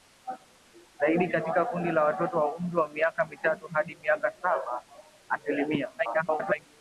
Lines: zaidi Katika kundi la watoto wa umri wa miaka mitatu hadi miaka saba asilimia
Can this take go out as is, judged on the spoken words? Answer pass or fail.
fail